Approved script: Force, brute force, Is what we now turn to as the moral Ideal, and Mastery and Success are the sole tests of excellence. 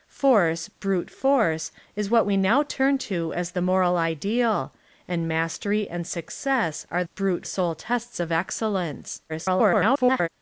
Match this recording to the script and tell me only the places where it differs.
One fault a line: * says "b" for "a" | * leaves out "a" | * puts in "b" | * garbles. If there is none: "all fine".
* says "brute" for "the"
* garbles